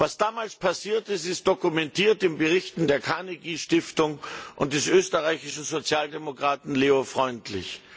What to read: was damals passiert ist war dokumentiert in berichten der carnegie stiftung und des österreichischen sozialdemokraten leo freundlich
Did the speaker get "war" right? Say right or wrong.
wrong